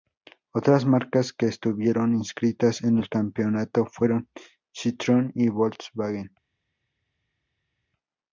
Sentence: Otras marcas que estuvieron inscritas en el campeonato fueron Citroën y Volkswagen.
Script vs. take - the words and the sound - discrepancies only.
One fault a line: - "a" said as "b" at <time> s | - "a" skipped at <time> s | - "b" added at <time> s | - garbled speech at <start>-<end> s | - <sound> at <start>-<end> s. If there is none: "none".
none